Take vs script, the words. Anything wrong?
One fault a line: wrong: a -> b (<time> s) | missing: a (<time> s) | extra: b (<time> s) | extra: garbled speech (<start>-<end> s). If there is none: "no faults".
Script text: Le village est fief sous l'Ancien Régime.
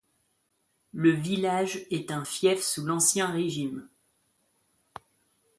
extra: un (2.1 s)